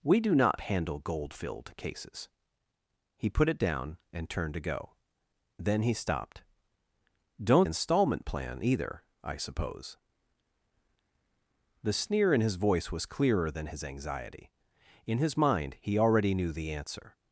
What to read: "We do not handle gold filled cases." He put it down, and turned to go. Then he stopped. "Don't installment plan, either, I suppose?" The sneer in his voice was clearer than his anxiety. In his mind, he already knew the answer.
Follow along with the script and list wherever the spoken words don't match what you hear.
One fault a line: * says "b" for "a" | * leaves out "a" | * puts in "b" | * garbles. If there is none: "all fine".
all fine